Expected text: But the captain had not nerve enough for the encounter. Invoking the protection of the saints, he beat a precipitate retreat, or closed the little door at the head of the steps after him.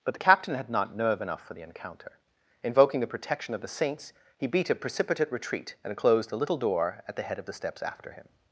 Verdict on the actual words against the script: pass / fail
fail